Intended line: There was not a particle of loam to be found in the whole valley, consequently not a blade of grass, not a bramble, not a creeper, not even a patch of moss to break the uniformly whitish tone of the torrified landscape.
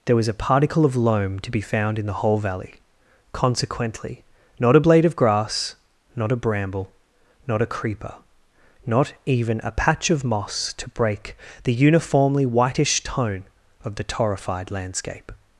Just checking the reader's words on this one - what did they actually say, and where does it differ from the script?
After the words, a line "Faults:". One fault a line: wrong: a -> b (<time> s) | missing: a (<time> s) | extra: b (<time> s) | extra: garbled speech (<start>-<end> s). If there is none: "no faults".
There was a particle of loam to be found in the whole valley, consequently not a blade of grass, not a bramble, not a creeper, not even a patch of moss to break the uniformly whitish tone of the torrified landscape.
Faults:
missing: not (0.3 s)